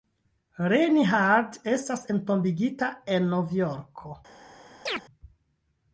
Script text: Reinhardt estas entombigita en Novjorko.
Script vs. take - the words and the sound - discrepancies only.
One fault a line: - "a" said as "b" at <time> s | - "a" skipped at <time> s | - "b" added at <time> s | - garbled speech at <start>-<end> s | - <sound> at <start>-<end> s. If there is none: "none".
- chirp at 4.9-5.0 s